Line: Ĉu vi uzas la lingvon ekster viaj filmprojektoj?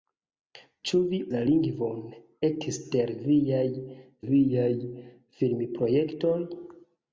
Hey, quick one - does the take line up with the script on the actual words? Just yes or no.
no